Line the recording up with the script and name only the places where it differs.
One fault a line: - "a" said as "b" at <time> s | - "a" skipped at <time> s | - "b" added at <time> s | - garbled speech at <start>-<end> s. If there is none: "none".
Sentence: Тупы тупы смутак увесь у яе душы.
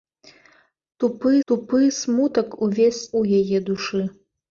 none